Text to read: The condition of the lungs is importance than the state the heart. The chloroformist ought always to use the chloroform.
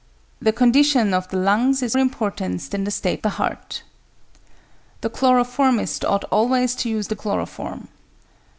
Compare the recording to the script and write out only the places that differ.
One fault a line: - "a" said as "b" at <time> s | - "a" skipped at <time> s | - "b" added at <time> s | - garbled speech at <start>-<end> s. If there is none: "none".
none